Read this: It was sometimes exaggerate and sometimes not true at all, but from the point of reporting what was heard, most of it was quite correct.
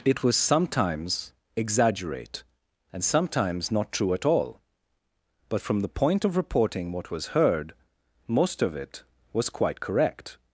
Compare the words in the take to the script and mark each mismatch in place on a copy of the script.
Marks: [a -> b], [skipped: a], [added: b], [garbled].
It was sometimes exaggerate and sometimes not true at all, but from the point of reporting what was heard, most of it was quite correct.